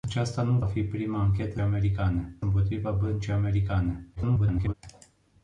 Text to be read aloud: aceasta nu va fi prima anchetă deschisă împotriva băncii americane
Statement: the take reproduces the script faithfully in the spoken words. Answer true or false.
false